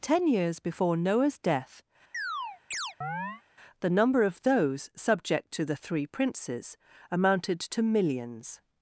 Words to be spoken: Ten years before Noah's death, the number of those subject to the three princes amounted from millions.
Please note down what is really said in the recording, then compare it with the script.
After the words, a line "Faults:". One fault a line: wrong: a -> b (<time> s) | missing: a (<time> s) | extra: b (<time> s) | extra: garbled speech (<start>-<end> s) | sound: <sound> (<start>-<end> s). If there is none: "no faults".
Ten years before Noah's death, the number of those subject to the three princes amounted to millions.
Faults:
sound: chirp (2.1-3.4 s)
wrong: from -> to (7.6 s)